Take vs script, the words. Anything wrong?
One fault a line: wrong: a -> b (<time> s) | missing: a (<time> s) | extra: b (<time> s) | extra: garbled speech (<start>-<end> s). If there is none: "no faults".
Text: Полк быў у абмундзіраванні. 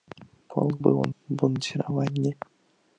no faults